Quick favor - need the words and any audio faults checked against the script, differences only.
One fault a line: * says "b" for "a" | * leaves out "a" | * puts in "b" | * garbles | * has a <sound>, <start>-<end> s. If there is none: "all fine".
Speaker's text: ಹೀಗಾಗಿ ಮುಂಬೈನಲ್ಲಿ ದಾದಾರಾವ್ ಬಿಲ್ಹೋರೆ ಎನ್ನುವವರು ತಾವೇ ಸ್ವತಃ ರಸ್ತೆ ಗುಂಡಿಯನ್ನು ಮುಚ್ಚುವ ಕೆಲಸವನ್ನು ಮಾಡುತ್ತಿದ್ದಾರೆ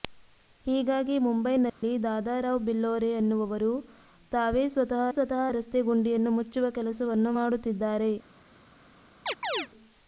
* has a dropout, 1.7-1.8 s
* puts in "ಸ್ವತಃ"
* has a chirp, 9.3-9.7 s